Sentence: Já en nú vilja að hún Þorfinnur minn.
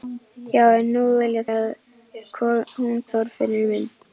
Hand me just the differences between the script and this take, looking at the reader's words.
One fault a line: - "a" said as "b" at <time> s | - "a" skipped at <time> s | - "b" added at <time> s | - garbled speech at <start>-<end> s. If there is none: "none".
none